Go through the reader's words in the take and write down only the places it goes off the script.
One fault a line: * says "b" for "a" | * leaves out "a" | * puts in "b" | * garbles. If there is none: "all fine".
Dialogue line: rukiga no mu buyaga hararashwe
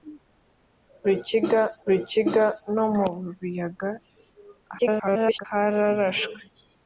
* puts in "rukiga"
* garbles